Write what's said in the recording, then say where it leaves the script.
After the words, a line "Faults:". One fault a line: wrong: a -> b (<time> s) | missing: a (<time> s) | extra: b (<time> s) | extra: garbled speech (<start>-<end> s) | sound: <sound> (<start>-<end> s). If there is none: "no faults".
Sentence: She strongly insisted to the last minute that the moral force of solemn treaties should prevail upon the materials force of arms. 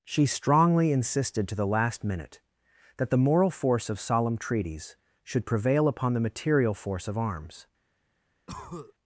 She strongly insisted to the last minute that the moral force of solemn treaties should prevail upon the material force of arms.
Faults:
wrong: materials -> material (6.2 s)
sound: cough (8.5-8.9 s)